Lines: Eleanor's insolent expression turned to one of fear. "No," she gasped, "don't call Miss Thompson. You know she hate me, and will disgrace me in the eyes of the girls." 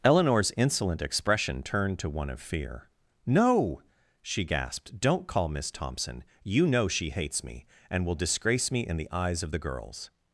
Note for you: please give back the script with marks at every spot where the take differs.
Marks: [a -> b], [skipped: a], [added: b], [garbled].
Eleanor's insolent expression turned to one of fear. "No," she gasped, "don't call Miss Thompson. You know she [hate -> hates] me, and will disgrace me in the eyes of the girls."